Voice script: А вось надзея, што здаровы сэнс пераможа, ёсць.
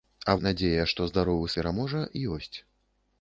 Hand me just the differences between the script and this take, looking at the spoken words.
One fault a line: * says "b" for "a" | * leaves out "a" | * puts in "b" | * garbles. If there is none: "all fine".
* leaves out "вось"
* leaves out "сэнс"